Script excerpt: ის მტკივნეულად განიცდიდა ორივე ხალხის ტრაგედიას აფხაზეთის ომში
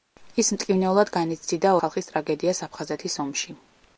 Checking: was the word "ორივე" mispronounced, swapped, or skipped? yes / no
yes